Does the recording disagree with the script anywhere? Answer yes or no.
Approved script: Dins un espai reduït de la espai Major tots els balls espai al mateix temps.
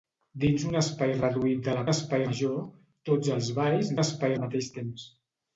no